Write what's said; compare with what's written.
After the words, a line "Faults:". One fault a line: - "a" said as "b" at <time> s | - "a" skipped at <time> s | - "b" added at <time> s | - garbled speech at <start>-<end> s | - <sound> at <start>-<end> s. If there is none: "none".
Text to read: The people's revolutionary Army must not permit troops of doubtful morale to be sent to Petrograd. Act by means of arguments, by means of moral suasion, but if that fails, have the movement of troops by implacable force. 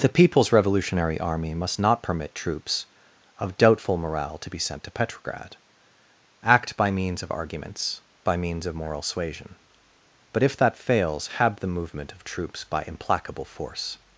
The people's revolutionary Army must not permit troops of doubtful morale to be sent to Petrograd. Act by means of arguments, by means of moral suasion, but if that fails, have the movement of troops by implacable force.
Faults:
none